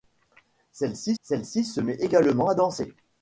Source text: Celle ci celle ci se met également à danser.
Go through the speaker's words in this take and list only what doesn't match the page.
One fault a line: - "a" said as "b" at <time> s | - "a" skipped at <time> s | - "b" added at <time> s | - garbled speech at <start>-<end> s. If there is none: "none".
none